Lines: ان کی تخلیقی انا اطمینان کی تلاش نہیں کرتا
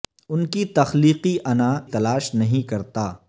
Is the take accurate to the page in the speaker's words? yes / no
no